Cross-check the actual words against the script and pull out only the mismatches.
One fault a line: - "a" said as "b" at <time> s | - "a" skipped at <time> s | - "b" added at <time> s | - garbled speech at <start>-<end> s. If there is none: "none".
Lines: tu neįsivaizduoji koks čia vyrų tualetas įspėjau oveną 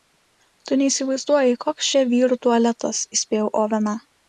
none